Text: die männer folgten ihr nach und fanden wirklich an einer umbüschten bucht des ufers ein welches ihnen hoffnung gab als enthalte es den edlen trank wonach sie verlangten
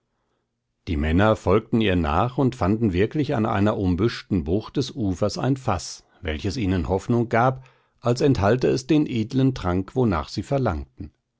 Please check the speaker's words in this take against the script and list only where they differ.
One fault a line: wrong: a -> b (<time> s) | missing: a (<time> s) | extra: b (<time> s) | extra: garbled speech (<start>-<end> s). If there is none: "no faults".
extra: faß (5.6 s)